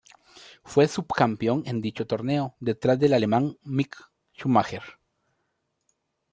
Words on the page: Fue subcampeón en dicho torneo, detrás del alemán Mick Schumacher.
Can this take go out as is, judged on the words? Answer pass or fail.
pass